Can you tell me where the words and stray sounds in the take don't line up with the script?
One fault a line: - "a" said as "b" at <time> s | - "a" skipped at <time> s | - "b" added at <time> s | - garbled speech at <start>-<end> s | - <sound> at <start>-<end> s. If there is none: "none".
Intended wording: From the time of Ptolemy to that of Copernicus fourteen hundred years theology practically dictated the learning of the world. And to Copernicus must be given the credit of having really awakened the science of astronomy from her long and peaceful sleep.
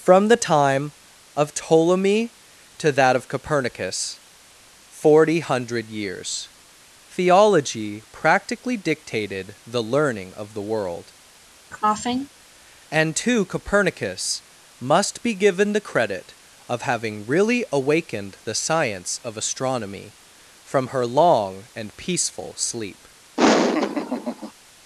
- "fourteen" said as "forty" at 4.9 s
- cough at 11.7-12.3 s
- laugh at 23.4-24.5 s